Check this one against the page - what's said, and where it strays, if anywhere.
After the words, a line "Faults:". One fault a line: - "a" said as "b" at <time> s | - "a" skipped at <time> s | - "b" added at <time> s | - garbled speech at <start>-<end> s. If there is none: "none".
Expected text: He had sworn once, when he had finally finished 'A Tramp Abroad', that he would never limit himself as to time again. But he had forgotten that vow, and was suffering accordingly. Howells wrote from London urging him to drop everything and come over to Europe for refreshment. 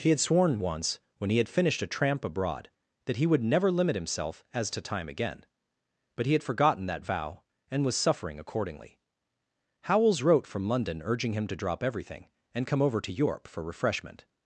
He had sworn once, when he had finished 'A Tramp Abroad', that he would never limit himself as to time again. But he had forgotten that vow, and was suffering accordingly. Howells wrote from London urging him to drop everything and come over to Europe for refreshment.
Faults:
- "finally" skipped at 1.5 s